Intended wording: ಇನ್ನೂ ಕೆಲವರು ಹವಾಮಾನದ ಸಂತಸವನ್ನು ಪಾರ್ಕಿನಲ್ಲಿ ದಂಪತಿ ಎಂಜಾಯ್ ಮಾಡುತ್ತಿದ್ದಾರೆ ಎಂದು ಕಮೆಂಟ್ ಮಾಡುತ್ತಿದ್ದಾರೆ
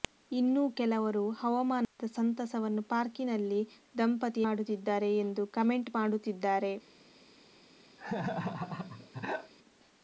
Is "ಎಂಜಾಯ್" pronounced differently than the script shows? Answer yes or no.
yes